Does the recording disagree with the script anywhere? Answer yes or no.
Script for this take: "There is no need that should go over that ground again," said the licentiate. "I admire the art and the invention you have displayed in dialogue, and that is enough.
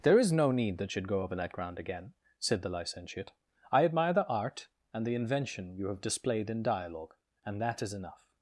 no